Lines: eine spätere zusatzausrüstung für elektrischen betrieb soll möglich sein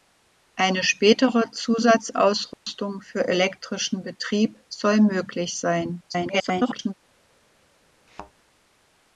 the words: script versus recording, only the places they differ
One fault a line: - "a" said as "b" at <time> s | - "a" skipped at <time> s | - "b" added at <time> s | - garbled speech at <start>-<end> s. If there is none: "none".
- garbled speech at 6.1-6.9 s